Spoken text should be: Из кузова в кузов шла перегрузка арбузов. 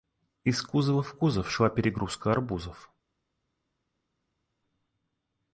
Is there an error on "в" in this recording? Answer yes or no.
no